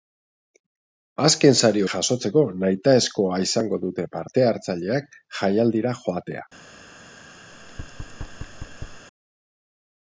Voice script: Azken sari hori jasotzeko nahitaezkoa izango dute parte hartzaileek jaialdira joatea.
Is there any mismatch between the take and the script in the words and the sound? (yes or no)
yes